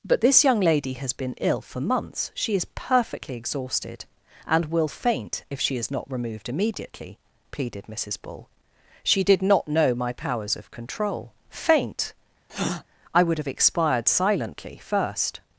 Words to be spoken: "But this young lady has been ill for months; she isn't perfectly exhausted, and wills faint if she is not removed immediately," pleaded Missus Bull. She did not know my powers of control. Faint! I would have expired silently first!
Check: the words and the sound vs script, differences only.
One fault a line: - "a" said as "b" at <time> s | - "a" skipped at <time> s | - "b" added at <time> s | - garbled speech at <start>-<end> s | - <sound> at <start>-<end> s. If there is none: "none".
- "isn't" said as "is" at 2.5 s
- "wills" said as "will" at 4.7 s
- breath at 12.5-12.8 s